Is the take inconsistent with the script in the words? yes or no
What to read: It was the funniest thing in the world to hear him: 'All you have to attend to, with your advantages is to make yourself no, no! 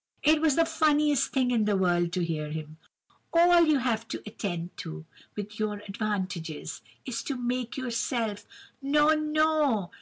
no